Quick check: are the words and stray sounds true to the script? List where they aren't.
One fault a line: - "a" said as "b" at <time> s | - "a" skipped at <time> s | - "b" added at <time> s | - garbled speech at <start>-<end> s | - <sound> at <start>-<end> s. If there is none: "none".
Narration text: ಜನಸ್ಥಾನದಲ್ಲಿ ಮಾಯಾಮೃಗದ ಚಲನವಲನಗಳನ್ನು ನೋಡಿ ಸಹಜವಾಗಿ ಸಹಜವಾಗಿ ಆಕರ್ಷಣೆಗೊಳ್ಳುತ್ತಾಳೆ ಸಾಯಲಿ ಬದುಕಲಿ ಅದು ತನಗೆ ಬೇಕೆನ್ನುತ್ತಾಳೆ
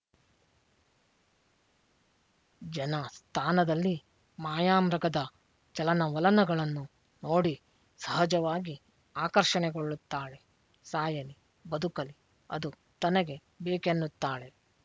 - "ಸಹಜವಾಗಿ" skipped at 8.8 s